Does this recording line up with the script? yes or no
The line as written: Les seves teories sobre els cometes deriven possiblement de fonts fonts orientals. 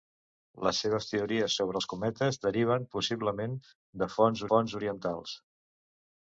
yes